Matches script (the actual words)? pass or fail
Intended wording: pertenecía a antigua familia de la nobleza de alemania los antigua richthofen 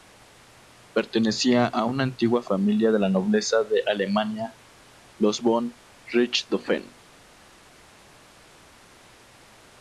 fail